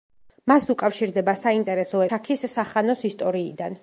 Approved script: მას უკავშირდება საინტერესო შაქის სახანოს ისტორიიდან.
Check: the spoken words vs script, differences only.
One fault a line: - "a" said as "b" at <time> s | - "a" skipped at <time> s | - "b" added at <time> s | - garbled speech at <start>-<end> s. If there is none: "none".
none